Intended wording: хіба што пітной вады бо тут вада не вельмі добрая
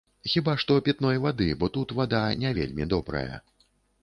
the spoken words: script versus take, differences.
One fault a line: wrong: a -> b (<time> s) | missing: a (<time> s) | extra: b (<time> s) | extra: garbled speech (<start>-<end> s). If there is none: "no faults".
no faults